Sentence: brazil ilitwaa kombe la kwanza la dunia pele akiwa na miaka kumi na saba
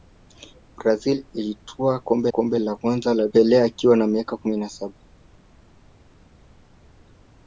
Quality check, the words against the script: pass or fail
fail